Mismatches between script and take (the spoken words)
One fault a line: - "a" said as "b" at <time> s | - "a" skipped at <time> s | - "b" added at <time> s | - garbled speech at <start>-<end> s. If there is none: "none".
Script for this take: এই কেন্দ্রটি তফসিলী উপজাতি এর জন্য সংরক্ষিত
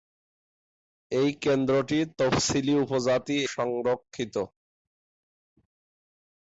- "এর জন্য" skipped at 3.4 s